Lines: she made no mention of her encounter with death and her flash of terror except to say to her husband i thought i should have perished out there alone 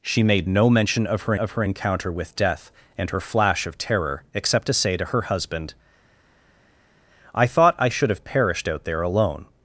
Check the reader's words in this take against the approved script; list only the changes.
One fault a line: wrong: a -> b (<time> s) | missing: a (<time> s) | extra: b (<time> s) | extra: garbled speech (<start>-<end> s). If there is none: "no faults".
extra: of her (1.4 s)